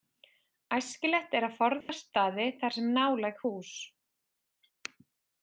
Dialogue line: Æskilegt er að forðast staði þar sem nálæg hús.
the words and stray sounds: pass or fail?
fail